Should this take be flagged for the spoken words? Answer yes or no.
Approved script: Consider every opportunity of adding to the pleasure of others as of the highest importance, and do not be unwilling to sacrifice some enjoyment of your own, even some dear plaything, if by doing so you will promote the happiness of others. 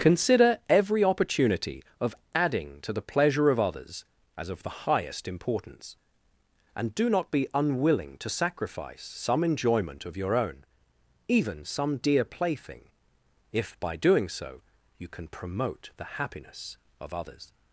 yes